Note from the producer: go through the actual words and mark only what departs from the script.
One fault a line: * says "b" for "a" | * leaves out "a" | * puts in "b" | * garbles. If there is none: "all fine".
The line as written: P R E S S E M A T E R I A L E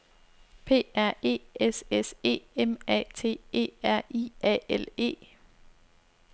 all fine